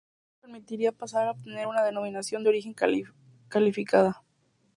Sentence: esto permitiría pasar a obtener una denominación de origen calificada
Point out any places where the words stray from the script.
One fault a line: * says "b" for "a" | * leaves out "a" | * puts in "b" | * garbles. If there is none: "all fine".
all fine